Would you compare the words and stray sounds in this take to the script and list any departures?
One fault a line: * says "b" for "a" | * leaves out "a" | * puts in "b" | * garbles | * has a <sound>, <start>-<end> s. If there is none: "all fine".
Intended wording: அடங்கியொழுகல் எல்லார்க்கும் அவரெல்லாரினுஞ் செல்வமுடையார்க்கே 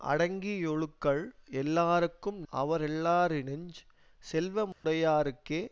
* has a dropout, 4.7-4.8 s